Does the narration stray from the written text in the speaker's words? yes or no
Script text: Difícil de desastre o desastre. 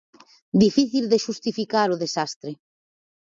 yes